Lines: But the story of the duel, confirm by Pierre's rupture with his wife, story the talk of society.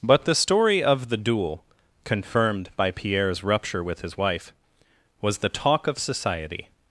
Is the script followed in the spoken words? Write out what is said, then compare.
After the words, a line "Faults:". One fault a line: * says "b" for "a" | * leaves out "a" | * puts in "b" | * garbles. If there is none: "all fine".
But the story of the duel, confirmed by Pierre's rupture with his wife, was the talk of society.
Faults:
* says "confirmed" for "confirm"
* says "was" for "story"